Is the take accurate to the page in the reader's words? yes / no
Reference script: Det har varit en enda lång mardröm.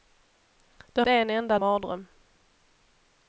no